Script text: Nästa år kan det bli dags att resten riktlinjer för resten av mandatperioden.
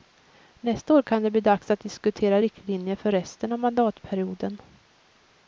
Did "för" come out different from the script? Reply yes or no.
no